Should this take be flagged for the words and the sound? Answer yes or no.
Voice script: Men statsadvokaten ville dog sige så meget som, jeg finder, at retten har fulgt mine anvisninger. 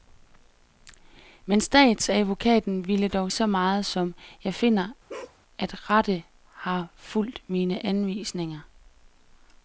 yes